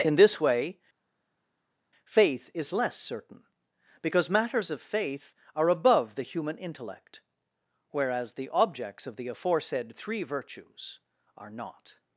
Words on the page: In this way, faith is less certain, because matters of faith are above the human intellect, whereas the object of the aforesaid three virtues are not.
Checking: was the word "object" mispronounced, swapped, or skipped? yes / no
yes